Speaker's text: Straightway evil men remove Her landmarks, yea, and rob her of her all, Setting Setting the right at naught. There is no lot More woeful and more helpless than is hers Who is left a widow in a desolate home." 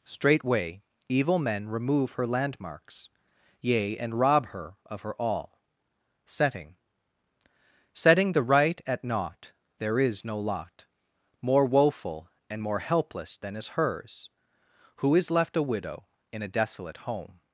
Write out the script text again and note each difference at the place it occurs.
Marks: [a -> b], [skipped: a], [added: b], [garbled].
Straightway evil men remove Her landmarks, yea, and rob her of her all, Setting Setting the right at naught. There is no lot More woeful and more helpless than is hers Who is left a widow in a desolate home."